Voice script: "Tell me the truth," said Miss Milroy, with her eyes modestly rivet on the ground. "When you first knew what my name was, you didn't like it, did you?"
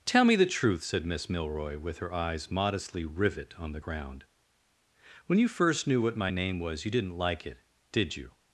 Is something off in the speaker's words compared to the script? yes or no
no